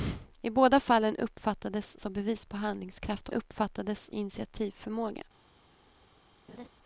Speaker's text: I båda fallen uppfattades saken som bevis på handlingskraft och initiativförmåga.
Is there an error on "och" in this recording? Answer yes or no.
yes